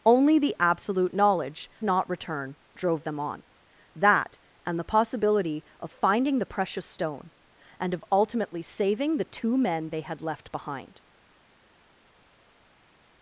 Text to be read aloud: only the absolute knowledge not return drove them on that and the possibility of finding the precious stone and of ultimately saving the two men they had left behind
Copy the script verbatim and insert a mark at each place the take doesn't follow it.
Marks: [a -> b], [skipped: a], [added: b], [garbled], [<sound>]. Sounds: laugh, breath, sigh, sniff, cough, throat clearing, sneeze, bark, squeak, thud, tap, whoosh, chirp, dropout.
only the absolute knowledge not return drove them on that and the possibility of finding the precious stone and of ultimately saving the two men they had left behind